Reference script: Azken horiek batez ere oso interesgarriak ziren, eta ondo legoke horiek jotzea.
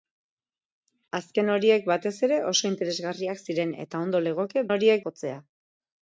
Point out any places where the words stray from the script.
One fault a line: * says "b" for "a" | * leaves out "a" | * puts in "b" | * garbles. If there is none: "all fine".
all fine